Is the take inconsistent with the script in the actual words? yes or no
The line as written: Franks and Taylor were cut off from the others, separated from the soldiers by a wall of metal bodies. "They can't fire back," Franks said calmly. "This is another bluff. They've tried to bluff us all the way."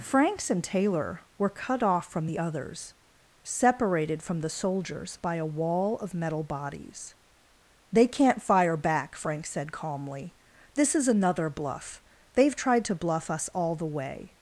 no